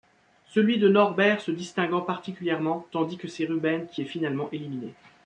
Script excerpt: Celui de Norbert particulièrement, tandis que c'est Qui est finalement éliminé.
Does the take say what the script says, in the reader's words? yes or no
no